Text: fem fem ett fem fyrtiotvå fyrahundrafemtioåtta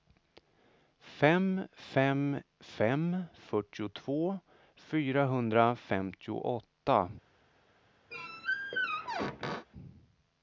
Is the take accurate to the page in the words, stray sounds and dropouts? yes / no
no